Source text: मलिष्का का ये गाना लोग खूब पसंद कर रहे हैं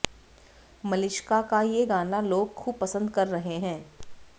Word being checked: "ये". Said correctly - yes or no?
yes